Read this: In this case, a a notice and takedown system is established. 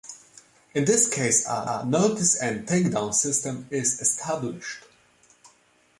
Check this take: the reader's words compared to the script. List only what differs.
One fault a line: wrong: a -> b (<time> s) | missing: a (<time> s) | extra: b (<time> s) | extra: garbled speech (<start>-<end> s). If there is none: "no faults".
no faults